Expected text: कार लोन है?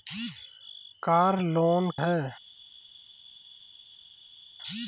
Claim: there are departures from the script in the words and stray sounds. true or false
false